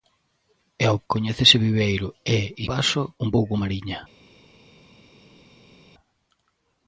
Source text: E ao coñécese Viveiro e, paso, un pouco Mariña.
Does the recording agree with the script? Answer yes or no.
yes